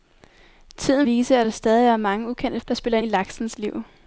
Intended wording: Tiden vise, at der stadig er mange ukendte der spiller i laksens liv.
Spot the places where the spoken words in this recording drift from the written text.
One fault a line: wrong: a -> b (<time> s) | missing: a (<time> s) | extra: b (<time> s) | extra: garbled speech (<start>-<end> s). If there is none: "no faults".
no faults